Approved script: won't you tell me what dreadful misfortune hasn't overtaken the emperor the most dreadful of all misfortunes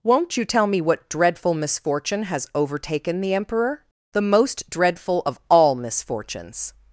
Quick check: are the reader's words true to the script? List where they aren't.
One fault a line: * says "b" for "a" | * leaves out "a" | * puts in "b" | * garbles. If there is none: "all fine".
* says "has" for "hasn't"